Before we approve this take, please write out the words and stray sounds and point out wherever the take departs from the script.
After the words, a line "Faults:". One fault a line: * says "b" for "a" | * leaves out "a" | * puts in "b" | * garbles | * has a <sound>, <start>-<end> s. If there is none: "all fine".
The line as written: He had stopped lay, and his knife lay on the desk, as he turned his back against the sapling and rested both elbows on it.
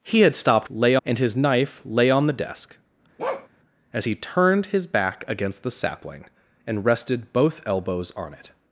He had stopped lay, and his knife lay on the desk, as he turned his back against the sapling and rested both elbows on it.
Faults:
* has a bark, 3.2-3.5 s